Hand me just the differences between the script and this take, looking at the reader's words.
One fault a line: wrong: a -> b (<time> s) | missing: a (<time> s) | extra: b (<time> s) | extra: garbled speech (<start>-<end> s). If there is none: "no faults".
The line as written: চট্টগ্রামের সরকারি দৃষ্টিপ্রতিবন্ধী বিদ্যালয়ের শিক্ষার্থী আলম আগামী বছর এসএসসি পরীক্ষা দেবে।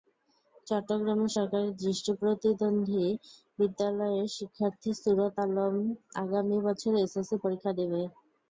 extra: সুরত (4.9 s)